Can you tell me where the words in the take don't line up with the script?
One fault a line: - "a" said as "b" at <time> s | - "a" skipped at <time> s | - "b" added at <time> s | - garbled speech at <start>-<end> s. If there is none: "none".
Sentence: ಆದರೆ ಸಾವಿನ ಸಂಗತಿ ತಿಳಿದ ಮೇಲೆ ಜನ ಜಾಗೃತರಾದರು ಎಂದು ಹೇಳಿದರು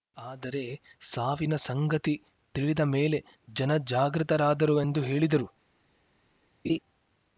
none